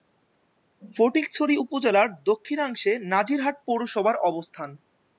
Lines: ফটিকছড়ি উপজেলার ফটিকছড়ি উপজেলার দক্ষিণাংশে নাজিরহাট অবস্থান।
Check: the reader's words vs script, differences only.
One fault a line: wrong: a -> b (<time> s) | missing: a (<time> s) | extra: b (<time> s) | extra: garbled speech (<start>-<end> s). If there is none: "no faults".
missing: ফটিকছড়ি উপজেলার (2.1 s)
extra: পৌরসভার (3.7 s)